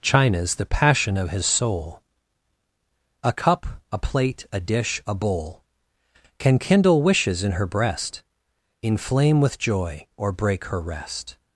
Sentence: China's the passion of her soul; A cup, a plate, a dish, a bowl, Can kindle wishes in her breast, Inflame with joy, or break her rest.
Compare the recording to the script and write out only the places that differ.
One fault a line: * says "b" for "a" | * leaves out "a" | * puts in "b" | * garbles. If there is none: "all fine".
* says "his" for "her"